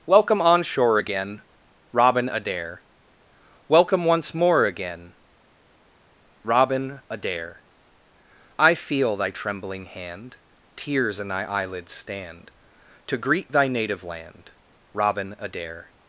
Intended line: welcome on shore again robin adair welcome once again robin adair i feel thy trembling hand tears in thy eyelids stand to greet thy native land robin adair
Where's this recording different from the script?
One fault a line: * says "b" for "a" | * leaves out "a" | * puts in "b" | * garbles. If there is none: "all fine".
* puts in "more"